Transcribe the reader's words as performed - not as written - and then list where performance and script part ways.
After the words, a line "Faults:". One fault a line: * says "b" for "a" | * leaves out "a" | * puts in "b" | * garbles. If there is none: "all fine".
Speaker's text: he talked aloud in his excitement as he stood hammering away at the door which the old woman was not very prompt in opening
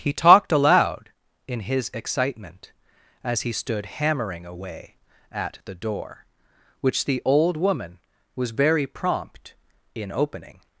he talked aloud in his excitement as he stood hammering away at the door which the old woman was very prompt in opening
Faults:
* leaves out "not"